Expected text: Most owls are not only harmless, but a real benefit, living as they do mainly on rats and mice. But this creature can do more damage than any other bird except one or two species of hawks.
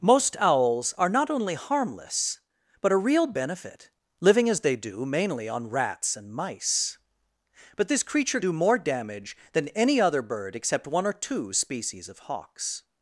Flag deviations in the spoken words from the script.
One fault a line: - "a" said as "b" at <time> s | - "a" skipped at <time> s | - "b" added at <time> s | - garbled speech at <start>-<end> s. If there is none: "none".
- "can" skipped at 8.4 s